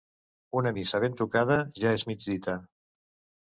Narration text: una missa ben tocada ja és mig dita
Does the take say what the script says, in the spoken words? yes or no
yes